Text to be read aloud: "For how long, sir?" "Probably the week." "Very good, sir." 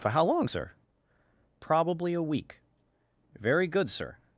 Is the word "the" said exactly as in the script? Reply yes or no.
no